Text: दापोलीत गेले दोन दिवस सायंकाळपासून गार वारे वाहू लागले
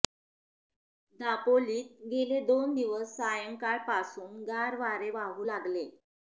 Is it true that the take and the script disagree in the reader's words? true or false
false